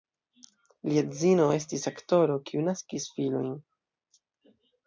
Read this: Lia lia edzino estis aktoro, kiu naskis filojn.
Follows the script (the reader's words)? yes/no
no